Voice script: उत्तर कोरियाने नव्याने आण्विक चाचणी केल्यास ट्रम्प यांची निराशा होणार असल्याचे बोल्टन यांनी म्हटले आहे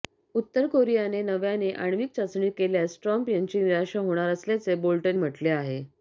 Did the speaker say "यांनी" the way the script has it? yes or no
no